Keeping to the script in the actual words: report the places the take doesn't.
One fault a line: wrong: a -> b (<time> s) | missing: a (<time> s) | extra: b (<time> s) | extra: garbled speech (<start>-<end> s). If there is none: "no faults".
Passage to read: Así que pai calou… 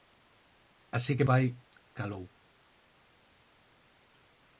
no faults